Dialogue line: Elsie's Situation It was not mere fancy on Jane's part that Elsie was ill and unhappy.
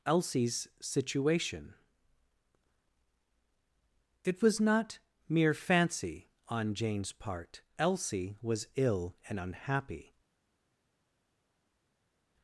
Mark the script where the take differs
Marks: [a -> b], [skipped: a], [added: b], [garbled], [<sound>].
Elsie's Situation It was not mere fancy on Jane's part [skipped: that] Elsie was ill and unhappy.